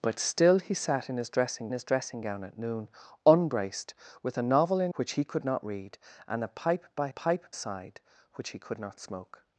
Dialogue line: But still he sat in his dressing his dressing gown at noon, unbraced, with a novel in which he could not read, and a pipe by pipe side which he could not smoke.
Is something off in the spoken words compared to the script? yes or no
no